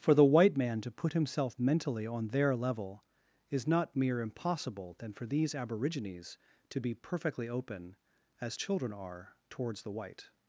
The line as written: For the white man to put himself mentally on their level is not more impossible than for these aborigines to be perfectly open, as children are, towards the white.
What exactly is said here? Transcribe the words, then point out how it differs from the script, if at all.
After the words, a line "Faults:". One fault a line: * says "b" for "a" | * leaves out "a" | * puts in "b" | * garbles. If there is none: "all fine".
For the white man to put himself mentally on their level is not mere impossible than for these aborigines to be perfectly open, as children are, towards the white.
Faults:
* says "mere" for "more"